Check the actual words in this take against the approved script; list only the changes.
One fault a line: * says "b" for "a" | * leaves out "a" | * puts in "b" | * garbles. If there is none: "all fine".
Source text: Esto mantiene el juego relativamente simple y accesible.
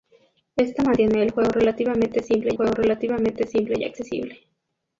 * puts in "juego relativamente simple"